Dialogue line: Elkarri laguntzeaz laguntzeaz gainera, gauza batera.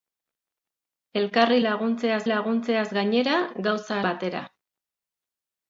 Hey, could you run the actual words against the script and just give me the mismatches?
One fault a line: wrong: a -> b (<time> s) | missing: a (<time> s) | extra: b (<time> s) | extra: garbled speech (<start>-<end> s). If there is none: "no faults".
no faults